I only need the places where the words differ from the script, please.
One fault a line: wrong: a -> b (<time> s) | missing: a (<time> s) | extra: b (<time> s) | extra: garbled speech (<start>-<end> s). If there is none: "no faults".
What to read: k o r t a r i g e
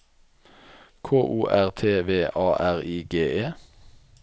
extra: v (2.0 s)